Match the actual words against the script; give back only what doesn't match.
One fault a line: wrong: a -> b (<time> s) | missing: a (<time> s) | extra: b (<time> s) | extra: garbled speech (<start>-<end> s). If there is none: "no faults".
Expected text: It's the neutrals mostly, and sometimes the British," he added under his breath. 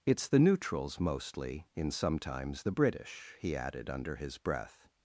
wrong: and -> in (1.7 s)